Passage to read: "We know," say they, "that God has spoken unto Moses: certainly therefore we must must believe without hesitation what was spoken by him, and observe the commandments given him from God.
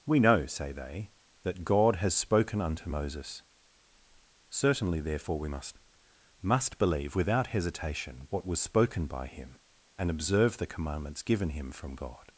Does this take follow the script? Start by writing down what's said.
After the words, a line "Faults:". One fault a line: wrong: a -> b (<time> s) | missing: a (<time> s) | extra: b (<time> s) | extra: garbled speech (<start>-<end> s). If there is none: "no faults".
"We know," say they, "that God has spoken unto Moses: certainly therefore we must must believe without hesitation what was spoken by him, and observe the commandments given him from God.
Faults:
no faults